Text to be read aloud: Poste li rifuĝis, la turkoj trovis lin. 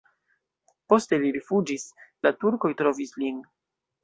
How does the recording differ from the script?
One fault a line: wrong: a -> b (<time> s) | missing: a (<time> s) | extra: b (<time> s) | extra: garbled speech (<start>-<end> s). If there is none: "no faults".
no faults